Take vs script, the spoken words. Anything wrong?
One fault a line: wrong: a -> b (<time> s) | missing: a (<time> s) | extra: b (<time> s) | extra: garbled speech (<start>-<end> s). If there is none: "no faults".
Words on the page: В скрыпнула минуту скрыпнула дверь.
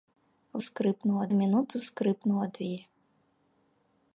no faults